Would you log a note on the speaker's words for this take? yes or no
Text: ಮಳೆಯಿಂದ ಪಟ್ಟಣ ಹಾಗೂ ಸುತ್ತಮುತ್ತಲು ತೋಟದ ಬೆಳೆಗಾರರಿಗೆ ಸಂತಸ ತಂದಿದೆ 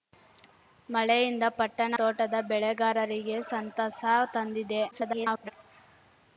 yes